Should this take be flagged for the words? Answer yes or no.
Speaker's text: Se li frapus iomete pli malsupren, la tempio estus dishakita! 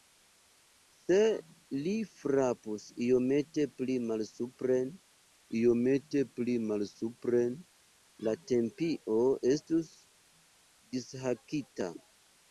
yes